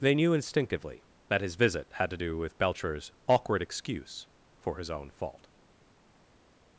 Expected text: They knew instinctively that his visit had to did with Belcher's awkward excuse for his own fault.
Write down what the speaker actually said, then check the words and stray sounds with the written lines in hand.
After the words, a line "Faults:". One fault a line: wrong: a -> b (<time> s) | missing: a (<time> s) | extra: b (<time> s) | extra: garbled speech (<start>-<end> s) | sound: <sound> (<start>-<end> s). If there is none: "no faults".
They knew instinctively that his visit had to do with Belcher's awkward excuse for his own fault.
Faults:
wrong: did -> do (2.1 s)